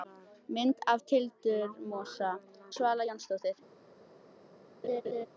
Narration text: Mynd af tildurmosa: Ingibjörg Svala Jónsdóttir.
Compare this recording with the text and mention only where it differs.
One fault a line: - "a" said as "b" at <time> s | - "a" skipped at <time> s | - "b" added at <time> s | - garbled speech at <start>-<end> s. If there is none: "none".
- "Ingibjörg" skipped at 2.3 s